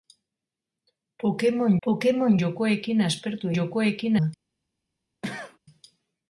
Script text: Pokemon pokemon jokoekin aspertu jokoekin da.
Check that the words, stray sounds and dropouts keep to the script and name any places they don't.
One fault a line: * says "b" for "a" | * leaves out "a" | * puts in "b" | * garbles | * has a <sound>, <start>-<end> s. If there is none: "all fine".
* has a cough, 5.2-5.6 s